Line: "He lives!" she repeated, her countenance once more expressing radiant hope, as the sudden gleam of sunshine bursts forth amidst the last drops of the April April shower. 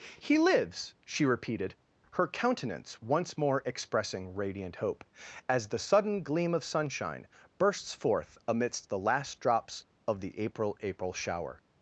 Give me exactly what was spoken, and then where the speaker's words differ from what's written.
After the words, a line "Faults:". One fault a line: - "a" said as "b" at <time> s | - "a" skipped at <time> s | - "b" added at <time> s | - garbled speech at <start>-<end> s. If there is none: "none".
"He lives!" she repeated, her countenance once more expressing radiant hope, as the sudden gleam of sunshine bursts forth amidst the last drops of the April April shower.
Faults:
none